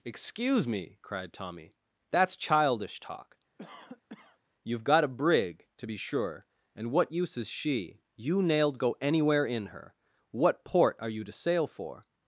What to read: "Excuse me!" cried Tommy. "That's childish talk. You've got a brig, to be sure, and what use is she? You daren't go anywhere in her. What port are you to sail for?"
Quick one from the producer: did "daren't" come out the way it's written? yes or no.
no